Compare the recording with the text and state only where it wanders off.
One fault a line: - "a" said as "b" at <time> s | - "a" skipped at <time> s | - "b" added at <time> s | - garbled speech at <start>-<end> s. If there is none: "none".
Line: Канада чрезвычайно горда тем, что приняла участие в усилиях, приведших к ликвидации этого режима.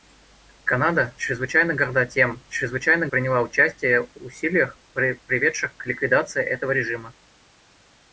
- "что" said as "чрезвычайно" at 2.5 s